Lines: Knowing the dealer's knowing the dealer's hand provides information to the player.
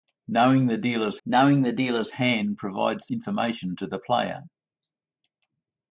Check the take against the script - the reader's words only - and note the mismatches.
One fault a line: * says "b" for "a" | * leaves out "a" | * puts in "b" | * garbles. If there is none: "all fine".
all fine